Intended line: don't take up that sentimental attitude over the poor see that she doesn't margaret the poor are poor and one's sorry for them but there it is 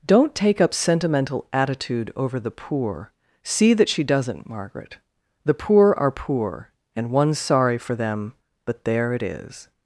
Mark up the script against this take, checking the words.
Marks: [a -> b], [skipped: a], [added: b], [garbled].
don't take up [skipped: that] sentimental attitude over the poor see that she doesn't margaret the poor are poor and one's sorry for them but there it is